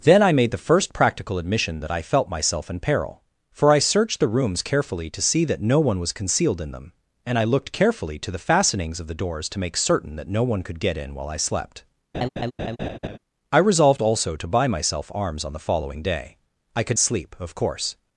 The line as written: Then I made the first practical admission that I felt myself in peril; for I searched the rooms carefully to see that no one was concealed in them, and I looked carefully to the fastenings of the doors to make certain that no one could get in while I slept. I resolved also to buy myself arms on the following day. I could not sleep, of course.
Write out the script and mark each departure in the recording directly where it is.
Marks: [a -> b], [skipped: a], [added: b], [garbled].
Then I made the first practical admission that I felt myself in peril; for I searched the rooms carefully to see that no one was concealed in them, and I looked carefully to the fastenings of the doors to make certain that no one could get in while I slept. I resolved also to buy myself arms on the following day. I could [skipped: not] sleep, of course.